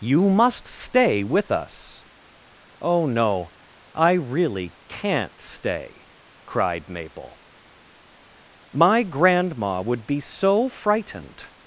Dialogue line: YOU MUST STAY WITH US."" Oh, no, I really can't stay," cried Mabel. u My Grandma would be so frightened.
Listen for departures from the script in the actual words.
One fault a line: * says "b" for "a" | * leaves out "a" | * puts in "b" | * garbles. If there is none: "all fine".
* leaves out "u"